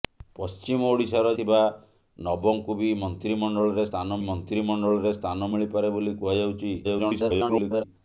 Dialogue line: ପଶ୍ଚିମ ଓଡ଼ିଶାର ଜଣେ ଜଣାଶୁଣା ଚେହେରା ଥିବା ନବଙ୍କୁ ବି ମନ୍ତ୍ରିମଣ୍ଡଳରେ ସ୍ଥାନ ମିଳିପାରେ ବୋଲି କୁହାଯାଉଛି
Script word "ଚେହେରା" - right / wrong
wrong